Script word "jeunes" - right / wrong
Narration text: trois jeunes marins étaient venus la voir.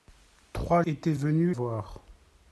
wrong